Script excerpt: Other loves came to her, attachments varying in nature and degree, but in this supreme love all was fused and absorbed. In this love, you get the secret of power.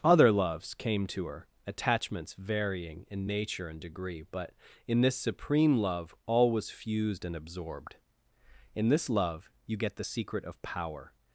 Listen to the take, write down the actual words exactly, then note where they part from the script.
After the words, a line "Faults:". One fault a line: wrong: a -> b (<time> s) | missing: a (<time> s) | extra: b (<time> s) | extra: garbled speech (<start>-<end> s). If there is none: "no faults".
Other loves came to her, attachments varying in nature and degree, but in this supreme love all was fused and absorbed. In this love, you get the secret of power.
Faults:
no faults